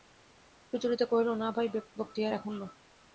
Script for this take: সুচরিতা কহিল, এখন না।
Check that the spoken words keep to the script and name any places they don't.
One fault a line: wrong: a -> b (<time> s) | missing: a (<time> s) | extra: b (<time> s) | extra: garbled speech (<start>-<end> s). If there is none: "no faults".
extra: না ভাই বক্তিয়ার (1.3 s)